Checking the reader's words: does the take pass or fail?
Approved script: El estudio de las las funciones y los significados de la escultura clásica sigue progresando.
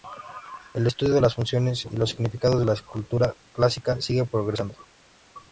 fail